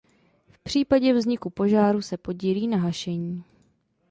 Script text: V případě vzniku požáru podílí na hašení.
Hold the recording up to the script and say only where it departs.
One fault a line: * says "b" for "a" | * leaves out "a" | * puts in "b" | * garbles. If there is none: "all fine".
* puts in "se"